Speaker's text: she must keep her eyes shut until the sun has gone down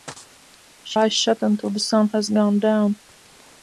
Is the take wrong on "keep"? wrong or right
wrong